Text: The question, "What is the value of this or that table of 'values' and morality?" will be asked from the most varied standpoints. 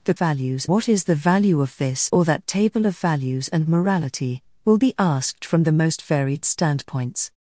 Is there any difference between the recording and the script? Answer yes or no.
yes